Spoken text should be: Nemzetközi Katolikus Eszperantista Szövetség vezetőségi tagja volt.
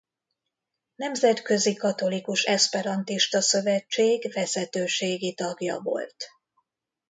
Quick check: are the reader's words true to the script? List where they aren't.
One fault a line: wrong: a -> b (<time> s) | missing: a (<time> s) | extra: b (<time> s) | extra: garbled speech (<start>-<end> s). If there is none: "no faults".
no faults